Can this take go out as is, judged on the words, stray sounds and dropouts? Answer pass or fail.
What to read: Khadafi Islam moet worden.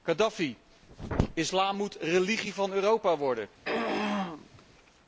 fail